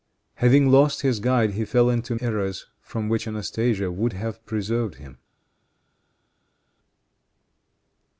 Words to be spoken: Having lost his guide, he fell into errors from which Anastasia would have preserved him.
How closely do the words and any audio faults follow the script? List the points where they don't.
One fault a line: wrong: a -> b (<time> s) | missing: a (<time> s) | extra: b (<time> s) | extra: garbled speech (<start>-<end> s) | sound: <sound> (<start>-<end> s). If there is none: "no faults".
no faults